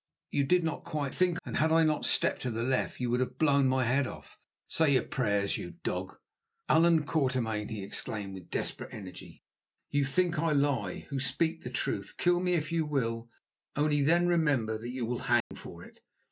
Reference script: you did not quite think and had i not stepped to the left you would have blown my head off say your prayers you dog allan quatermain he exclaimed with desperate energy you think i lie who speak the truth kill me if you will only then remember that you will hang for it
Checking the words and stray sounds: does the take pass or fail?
fail